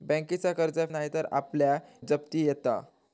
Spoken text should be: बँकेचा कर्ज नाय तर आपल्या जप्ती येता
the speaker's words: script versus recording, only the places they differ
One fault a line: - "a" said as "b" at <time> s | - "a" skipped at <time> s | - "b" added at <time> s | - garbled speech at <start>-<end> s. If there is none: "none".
none